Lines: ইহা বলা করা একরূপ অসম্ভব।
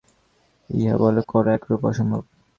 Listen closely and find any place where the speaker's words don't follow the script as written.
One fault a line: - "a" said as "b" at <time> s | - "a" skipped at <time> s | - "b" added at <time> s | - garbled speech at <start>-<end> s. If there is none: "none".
none